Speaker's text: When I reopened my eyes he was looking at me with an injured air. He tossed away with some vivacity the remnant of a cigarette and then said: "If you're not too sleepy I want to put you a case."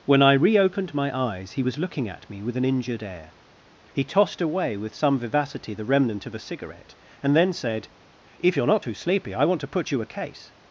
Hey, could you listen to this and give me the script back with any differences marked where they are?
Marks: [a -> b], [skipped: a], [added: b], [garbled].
When I reopened my eyes he was looking at me with an injured air. He tossed away with some vivacity the remnant of a cigarette and then said: "If you're not too sleepy I want to put you a case."